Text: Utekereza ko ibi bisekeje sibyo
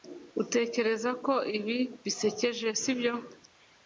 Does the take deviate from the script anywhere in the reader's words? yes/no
no